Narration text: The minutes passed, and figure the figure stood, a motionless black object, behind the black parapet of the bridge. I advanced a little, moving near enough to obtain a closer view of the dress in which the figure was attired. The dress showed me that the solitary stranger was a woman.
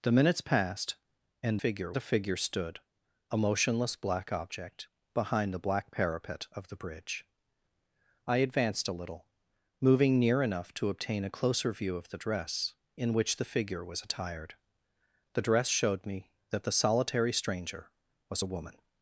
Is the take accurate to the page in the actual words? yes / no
yes